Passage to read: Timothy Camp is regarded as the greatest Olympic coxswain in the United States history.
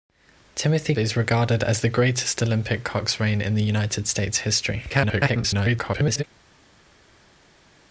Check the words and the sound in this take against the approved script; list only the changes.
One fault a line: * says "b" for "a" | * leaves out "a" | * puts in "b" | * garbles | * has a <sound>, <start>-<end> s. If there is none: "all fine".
* leaves out "Camp"
* garbles